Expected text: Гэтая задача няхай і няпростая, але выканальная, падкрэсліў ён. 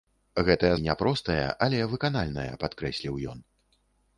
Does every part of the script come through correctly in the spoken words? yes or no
no